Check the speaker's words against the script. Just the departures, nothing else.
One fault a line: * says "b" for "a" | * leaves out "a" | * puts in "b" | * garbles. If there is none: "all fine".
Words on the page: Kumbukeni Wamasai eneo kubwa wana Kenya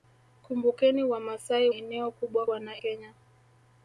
all fine